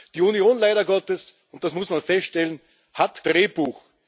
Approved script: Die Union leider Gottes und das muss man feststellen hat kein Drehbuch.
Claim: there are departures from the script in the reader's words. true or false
true